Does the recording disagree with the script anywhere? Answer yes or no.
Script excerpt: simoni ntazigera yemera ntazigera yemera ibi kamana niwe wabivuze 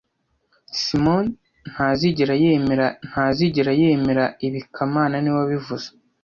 no